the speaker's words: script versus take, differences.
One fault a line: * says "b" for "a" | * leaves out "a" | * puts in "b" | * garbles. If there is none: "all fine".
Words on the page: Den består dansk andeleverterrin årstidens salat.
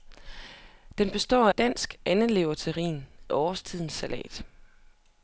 all fine